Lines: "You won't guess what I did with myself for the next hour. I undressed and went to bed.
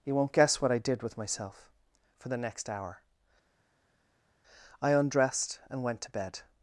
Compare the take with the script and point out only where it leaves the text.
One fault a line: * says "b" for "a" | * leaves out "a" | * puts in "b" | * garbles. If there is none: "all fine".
all fine